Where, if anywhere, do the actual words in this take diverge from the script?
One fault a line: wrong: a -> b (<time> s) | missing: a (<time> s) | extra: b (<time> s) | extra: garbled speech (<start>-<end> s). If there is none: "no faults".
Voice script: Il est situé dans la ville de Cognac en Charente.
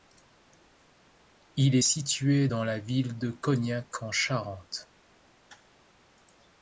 no faults